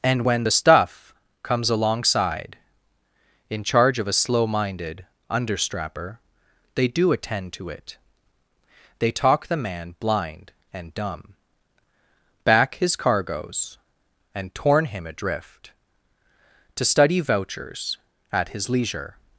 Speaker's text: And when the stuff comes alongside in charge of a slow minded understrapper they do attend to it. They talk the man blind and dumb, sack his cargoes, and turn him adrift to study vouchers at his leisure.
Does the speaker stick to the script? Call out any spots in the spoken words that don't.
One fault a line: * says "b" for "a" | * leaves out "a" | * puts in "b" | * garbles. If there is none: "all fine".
* says "back" for "sack"
* says "torn" for "turn"